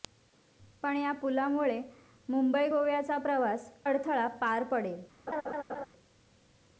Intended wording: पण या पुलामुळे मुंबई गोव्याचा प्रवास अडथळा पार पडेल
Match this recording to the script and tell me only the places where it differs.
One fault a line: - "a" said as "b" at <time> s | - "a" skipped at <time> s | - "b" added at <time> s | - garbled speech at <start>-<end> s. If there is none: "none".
none